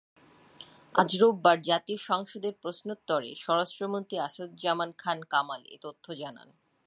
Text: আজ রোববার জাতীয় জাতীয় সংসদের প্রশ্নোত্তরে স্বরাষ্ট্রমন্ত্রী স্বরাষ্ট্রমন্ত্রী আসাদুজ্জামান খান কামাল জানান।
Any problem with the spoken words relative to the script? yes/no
yes